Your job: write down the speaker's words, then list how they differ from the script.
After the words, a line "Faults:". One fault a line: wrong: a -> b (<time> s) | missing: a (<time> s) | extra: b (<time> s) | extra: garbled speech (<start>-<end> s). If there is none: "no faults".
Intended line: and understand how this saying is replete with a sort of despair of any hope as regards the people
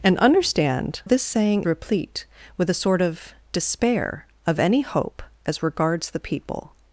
and understand this saying replete with a sort of despair of any hope as regards the people
Faults:
missing: how (1.0 s)
missing: is (1.6 s)